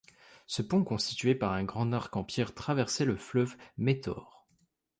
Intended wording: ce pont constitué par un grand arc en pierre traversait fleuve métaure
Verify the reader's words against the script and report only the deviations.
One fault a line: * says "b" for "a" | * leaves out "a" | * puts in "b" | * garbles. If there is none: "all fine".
* puts in "le"